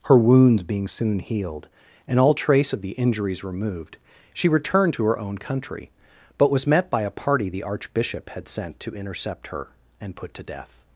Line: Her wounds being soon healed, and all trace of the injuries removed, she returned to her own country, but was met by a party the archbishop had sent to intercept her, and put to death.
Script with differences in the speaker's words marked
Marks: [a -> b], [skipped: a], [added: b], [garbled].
Her wounds being soon healed, and all trace of the injuries removed, she returned to her own country, but was met by a party the archbishop had sent to intercept her, and put to death.